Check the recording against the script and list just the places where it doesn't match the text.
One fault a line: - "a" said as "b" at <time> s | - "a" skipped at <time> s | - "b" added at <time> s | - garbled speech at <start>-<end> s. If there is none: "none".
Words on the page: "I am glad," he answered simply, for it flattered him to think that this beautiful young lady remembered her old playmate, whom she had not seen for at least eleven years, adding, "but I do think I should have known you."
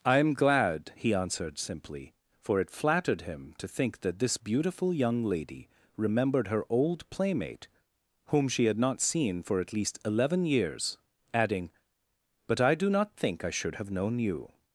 - "not" added at 12.9 s